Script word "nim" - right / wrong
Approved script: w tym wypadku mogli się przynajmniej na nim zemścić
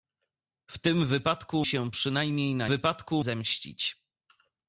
wrong